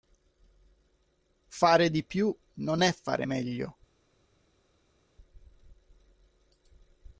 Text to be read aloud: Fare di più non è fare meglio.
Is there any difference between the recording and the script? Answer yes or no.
no